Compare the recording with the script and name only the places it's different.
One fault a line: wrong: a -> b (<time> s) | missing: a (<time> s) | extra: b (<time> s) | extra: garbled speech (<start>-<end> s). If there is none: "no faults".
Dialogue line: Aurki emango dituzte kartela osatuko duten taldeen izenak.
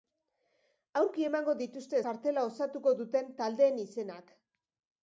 no faults